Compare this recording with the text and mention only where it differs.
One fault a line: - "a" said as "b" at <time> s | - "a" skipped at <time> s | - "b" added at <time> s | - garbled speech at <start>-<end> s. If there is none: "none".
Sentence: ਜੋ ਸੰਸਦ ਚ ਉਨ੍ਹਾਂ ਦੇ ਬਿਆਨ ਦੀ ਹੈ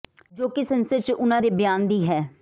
- "ਕਿ" added at 0.5 s